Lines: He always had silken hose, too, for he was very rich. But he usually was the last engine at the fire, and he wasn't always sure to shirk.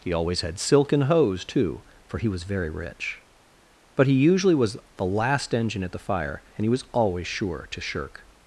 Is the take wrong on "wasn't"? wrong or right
wrong